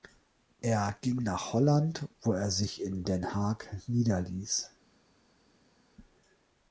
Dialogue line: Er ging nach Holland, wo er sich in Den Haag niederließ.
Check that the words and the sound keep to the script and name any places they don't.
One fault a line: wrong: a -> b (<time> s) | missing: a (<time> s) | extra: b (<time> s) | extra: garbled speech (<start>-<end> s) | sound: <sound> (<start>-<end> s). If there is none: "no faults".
no faults